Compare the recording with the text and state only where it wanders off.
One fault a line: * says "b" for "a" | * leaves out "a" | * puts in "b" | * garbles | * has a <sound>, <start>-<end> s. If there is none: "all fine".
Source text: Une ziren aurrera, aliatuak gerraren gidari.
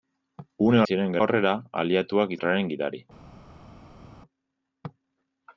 all fine